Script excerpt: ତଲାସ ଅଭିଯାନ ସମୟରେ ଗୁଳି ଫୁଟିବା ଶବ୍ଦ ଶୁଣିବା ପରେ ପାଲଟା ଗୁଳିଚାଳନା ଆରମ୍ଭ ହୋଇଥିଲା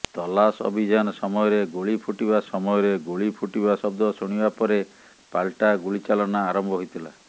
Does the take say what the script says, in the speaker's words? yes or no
no